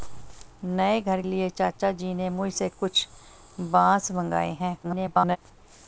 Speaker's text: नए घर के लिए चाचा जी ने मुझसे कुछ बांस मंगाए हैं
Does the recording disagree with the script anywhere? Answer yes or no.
yes